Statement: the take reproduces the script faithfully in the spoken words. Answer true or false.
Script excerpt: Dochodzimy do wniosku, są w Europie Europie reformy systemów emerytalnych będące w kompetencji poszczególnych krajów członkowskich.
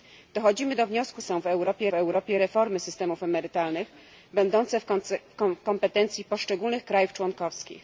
true